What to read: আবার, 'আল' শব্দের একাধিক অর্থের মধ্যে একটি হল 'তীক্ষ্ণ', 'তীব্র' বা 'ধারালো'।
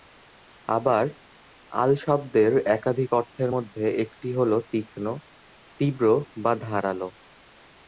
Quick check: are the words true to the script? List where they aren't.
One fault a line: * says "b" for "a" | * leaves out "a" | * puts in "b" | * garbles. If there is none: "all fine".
all fine